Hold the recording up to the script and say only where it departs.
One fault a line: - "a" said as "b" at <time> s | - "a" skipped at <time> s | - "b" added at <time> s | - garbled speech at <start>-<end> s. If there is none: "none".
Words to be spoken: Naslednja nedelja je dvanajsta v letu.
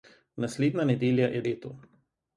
- "dvanajsta v" skipped at 1.4 s